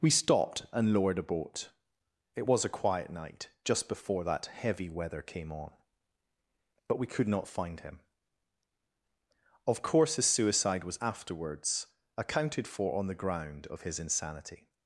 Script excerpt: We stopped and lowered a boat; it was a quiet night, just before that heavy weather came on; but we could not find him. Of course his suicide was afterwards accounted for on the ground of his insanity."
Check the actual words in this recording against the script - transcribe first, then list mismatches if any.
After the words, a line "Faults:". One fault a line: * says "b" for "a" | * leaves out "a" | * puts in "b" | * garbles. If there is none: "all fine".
We stopped and lowered a boat; it was a quiet night, just before that heavy weather came on; but we could not find him. Of course his suicide was afterwards accounted for on the ground of his insanity."
Faults:
all fine